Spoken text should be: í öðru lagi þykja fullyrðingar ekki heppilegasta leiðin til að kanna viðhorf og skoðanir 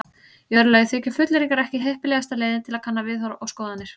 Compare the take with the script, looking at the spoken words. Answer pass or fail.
pass